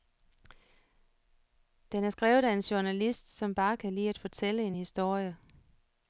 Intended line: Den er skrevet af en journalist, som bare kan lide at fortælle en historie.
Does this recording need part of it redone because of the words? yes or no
no